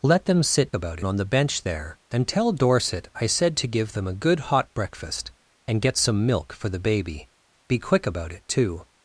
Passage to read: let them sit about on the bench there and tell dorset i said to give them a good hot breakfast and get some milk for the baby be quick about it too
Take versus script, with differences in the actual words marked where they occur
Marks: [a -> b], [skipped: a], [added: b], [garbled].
let them sit about on the bench there and tell dorset i said to give them a good hot breakfast and get some milk for the baby be quick about it too